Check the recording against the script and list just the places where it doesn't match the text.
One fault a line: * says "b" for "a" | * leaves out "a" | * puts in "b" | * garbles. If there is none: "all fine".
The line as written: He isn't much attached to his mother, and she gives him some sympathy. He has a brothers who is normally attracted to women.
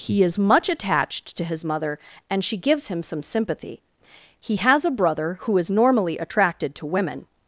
* says "is" for "isn't"
* says "brother" for "brothers"